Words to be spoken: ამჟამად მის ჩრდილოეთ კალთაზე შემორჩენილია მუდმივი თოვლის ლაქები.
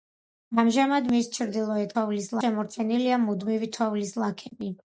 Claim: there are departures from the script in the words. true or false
true